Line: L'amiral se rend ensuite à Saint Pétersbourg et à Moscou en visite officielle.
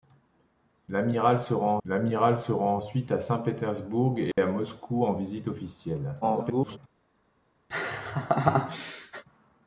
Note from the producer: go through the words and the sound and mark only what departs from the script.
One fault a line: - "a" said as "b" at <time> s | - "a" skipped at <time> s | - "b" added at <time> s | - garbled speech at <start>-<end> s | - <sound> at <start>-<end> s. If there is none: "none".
- "l'amiral se rend" added at 1.9 s
- dropout at 4.3-4.4 s
- garbled speech at 6.2-6.8 s
- laugh at 7.7-9.2 s